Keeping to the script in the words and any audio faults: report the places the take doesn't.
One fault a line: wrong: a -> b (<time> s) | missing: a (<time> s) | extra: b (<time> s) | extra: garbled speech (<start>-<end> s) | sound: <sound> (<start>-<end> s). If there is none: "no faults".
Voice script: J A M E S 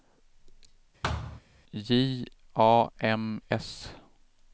sound: thud (1.0-1.4 s)
missing: E (3.4 s)